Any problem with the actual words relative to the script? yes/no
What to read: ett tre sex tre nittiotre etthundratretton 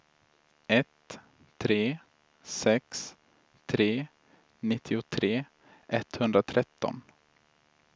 no